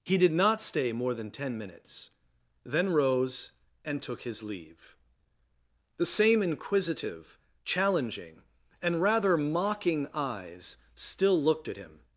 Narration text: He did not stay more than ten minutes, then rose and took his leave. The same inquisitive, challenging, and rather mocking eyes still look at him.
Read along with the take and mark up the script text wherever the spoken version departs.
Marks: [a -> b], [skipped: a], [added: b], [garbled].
He did not stay more than ten minutes, then rose and took his leave. The same inquisitive, challenging, and rather mocking eyes still [look -> looked] at him.